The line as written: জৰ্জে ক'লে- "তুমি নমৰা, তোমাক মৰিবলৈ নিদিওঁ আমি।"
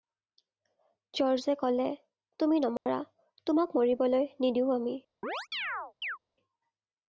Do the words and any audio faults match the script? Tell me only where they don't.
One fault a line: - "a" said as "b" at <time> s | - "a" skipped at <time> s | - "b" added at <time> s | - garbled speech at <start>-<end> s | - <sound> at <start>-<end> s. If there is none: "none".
- dropout at 2.8-2.9 s
- chirp at 5.2-6.2 s